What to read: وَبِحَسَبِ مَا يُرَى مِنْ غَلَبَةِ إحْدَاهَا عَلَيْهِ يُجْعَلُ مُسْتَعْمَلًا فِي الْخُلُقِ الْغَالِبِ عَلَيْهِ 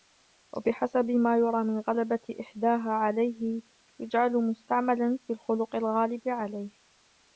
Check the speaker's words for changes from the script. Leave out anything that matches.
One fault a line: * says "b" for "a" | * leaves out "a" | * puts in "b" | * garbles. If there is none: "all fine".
all fine